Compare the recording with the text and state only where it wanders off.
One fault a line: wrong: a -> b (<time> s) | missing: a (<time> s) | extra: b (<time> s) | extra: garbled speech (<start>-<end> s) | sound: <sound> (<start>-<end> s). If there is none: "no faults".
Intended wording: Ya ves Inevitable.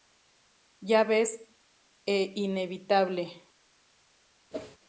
extra: e (2.0 s)
sound: whoosh (4.5-4.8 s)